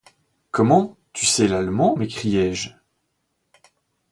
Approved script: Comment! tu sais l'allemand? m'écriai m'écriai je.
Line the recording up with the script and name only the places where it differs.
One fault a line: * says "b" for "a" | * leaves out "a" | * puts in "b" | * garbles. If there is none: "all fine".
* leaves out "m'écriai"